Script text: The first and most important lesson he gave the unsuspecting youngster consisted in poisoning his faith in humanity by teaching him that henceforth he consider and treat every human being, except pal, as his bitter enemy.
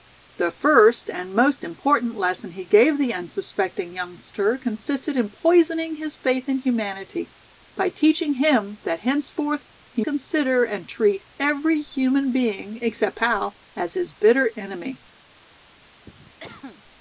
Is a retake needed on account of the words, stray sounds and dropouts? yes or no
yes